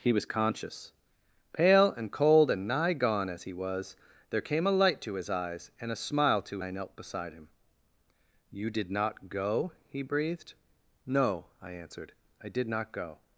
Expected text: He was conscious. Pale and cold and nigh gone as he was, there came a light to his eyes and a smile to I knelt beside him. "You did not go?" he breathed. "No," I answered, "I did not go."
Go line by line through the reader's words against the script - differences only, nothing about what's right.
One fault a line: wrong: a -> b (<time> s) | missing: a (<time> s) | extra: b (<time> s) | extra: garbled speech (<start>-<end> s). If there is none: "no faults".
no faults